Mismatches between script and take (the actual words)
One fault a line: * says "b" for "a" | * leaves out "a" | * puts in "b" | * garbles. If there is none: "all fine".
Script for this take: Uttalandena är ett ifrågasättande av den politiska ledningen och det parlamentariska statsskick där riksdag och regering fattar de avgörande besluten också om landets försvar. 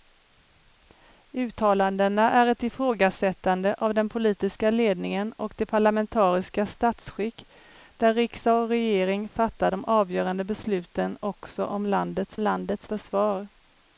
* puts in "landets"